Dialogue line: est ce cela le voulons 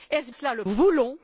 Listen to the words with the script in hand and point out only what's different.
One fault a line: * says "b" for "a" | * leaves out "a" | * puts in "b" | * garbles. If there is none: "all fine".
all fine